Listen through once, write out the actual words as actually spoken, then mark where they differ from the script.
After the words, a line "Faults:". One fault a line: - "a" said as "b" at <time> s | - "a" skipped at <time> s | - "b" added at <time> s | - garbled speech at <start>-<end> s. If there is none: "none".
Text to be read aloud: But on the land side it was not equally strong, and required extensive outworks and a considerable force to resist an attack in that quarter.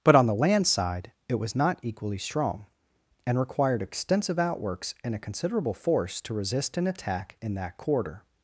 But on the land side it was not equally strong, and required extensive outworks and a considerable force to resist an attack in that quarter.
Faults:
none